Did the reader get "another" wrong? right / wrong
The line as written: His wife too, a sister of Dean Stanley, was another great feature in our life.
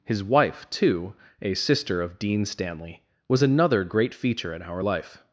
right